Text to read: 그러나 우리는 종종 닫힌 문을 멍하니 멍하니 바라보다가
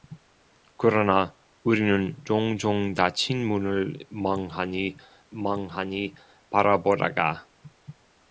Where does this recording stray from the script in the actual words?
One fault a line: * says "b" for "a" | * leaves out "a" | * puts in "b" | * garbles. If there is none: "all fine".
all fine